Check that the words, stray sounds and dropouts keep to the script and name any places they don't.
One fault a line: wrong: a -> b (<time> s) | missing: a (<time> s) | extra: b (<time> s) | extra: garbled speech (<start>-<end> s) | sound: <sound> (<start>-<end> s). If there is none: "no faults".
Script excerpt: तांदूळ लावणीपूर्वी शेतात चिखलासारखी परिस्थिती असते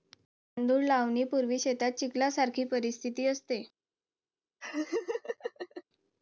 sound: laugh (4.6-5.8 s)